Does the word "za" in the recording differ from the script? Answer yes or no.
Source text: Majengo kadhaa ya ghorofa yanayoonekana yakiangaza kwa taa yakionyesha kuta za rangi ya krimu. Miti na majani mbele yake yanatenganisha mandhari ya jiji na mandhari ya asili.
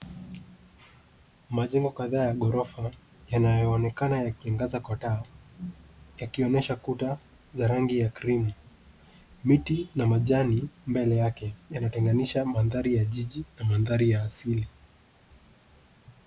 no